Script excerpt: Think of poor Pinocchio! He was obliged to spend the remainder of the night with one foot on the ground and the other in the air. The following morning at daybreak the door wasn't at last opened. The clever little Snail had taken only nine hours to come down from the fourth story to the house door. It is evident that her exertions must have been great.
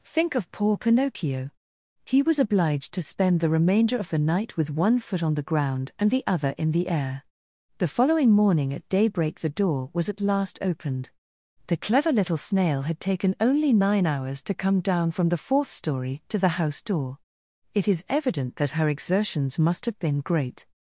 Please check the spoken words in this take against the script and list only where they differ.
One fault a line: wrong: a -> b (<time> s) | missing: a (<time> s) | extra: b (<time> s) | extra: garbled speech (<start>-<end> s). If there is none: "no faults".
wrong: wasn't -> was (9.9 s)